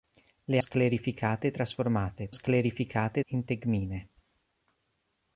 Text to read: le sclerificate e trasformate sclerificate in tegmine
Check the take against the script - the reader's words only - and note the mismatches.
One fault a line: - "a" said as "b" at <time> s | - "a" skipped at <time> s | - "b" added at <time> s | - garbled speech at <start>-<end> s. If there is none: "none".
none